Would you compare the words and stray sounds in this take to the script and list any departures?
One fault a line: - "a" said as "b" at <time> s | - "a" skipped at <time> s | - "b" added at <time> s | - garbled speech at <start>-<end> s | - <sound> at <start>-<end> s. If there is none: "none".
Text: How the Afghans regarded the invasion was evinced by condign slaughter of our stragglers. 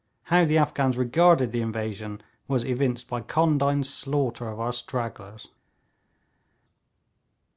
none